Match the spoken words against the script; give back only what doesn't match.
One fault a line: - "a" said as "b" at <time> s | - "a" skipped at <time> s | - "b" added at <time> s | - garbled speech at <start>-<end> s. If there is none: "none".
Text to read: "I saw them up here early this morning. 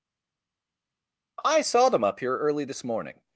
none